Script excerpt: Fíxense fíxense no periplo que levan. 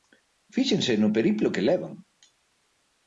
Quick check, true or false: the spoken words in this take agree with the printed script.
false